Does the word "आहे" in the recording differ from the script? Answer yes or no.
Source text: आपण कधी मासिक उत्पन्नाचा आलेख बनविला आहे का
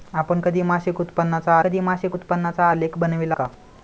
yes